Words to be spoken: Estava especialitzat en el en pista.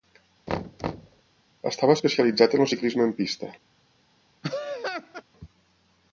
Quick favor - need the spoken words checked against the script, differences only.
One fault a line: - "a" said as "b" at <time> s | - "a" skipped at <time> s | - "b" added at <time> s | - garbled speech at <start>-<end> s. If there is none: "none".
- "ciclisme" added at 2.7 s